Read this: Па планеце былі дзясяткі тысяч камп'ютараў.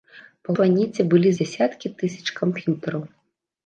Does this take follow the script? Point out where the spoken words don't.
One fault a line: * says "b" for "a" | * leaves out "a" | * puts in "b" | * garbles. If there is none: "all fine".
all fine